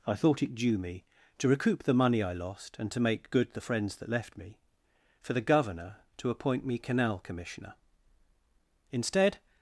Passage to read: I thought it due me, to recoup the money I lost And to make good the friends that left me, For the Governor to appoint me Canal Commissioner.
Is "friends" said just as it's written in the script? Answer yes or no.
yes